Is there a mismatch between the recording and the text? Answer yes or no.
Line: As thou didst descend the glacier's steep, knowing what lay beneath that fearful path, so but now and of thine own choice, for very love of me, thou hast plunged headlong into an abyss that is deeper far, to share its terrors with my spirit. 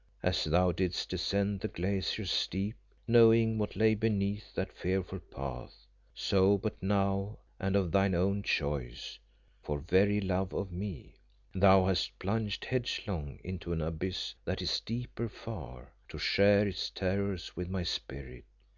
no